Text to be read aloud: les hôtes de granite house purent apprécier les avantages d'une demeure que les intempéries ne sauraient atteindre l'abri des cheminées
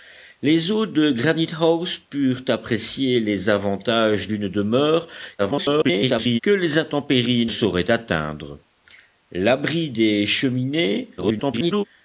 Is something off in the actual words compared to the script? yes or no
yes